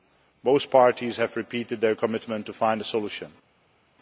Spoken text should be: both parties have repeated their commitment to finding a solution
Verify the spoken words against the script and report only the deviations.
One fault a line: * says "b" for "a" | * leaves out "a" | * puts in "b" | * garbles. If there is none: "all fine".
all fine